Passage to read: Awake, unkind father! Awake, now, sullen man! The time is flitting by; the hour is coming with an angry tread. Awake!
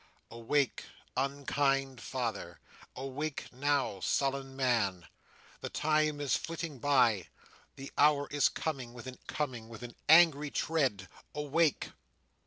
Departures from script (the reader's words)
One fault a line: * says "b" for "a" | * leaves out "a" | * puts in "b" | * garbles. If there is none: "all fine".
* puts in "coming with an"